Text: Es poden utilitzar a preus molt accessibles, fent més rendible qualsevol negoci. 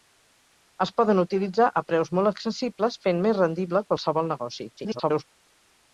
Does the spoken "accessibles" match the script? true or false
true